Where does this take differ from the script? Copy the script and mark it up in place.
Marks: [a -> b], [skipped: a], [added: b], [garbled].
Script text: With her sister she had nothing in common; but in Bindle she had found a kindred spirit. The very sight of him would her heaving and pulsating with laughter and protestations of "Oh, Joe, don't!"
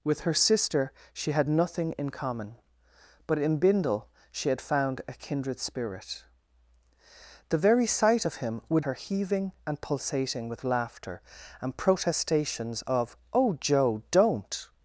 With her sister she had nothing in common; but in Bindle she had found a kindred spirit. The very sight of him would her heaving and pulsating with laughter and protestations of "Oh, Joe, don't!"